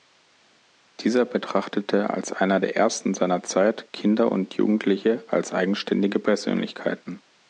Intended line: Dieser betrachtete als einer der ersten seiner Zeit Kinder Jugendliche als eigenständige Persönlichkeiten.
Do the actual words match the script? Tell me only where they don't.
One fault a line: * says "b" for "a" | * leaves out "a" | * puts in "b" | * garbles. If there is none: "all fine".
* puts in "und"